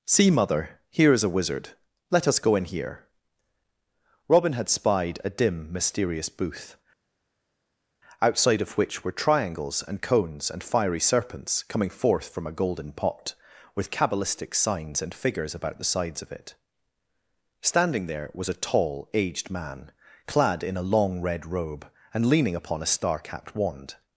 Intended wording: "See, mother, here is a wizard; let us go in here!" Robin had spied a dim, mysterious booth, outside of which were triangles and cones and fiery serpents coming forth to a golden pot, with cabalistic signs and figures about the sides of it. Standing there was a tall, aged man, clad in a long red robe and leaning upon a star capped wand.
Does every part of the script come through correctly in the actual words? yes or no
no